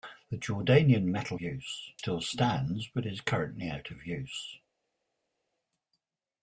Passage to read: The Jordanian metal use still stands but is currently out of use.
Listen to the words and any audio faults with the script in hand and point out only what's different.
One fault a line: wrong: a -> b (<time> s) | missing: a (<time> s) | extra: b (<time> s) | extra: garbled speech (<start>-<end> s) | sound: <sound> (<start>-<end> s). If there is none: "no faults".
no faults